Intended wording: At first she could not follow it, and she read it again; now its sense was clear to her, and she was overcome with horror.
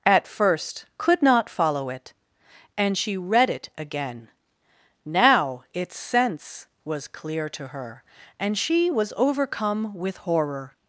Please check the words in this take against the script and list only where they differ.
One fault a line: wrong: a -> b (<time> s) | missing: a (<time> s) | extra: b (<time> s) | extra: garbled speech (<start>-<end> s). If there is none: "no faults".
missing: she (0.8 s)